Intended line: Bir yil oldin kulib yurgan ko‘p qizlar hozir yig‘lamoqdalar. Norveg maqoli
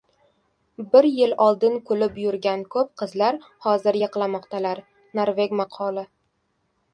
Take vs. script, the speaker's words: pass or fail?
pass